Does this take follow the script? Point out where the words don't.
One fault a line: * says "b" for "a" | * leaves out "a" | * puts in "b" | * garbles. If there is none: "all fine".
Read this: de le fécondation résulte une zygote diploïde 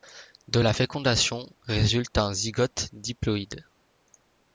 * says "la" for "le"
* says "un" for "une"